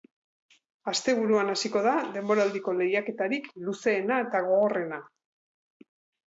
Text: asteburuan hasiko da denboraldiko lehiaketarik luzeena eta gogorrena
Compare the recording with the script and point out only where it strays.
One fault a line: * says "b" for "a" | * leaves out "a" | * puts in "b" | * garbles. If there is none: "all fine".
all fine